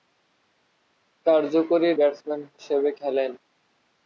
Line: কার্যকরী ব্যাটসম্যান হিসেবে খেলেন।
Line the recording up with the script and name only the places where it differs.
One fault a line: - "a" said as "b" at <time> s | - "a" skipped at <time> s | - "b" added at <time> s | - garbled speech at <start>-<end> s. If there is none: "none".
none